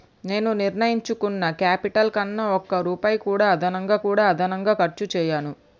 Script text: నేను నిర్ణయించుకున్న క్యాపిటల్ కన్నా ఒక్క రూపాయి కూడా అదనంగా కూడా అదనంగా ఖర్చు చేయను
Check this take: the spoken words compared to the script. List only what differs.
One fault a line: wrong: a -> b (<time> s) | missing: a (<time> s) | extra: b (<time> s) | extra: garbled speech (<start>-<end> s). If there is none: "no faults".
no faults